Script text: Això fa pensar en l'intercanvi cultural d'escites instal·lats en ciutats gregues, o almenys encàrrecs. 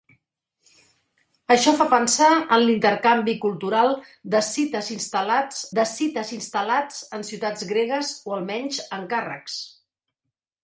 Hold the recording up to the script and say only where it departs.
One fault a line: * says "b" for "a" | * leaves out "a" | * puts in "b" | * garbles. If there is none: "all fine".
* puts in "d'escites instal·lats"